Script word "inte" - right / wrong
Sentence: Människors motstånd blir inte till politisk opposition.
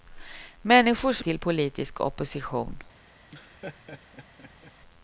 wrong